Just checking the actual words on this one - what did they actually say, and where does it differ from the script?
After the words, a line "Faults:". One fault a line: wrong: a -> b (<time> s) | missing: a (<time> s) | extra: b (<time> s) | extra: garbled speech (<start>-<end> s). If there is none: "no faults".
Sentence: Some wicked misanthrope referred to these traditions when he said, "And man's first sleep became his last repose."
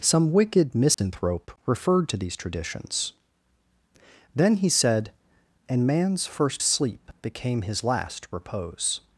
Some wicked misanthrope referred to these traditions then he said, "And man's first sleep became his last repose."
Faults:
wrong: when -> then (4.3 s)